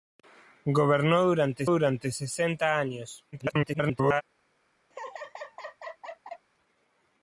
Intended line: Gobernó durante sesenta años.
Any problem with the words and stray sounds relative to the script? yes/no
yes